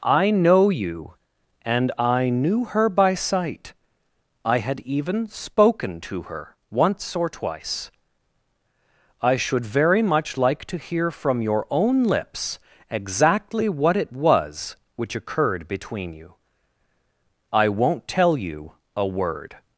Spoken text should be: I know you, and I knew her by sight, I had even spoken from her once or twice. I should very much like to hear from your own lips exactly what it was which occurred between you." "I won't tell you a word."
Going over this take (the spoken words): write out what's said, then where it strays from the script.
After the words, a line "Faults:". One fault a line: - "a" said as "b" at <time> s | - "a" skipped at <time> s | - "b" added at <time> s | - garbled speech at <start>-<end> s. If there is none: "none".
I know you, and I knew her by sight, I had even spoken to her once or twice. I should very much like to hear from your own lips exactly what it was which occurred between you." "I won't tell you a word."
Faults:
- "from" said as "to" at 6.0 s